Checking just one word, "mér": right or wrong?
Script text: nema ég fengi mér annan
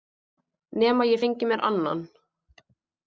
right